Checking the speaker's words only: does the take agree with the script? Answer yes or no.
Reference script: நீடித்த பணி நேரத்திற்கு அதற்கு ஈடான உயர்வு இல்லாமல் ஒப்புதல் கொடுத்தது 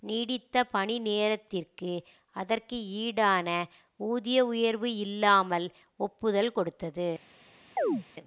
no